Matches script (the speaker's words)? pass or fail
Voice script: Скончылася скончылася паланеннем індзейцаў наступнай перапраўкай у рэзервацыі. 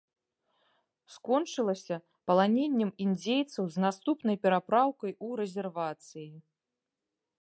fail